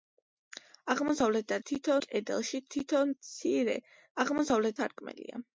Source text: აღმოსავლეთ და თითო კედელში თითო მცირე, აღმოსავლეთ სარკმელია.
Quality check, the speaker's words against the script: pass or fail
pass